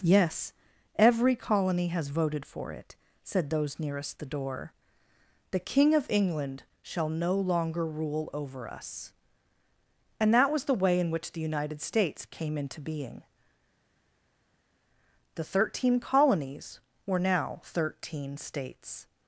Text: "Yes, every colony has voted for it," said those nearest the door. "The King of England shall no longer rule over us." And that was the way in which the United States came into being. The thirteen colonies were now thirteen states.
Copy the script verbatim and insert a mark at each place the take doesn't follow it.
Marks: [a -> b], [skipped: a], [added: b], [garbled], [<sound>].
"Yes, every colony has voted for it," said those nearest the door. "The King of England shall no longer rule over us." And that was the way in which the United States came into being. The thirteen colonies were now thirteen states.